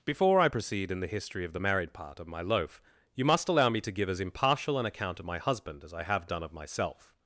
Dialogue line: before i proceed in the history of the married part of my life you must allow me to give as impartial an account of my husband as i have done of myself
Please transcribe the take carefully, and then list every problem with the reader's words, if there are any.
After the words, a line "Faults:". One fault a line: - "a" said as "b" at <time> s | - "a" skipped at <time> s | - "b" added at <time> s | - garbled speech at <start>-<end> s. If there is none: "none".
before i proceed in the history of the married part of my loaf you must allow me to give as impartial an account of my husband as i have done of myself
Faults:
- "life" said as "loaf" at 2.4 s